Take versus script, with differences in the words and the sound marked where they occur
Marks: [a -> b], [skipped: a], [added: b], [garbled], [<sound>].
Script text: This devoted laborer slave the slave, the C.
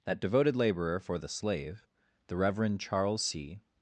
[This -> That] devoted laborer [slave -> for] the slave, the [added: Reverend Charles] C.